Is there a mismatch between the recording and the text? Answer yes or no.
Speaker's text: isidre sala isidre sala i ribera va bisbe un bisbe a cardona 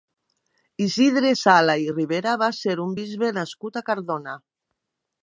yes